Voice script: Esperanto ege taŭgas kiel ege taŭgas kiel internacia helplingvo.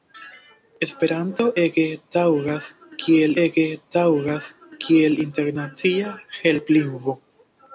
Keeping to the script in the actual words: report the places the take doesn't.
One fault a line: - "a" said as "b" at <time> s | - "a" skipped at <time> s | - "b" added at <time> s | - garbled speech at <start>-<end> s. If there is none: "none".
none